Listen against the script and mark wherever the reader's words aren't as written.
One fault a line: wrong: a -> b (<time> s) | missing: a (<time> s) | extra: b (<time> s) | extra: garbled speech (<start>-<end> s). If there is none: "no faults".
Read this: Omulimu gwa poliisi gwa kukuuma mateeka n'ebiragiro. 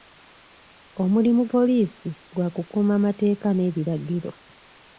missing: gwa (1.4 s)